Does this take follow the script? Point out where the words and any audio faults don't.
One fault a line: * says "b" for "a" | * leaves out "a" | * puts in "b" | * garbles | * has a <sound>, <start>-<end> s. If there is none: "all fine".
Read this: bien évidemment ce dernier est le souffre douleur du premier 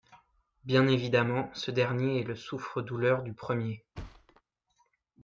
* has a thud, 3.9-4.4 s